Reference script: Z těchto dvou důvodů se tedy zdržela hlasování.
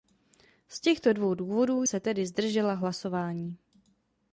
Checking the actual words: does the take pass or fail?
pass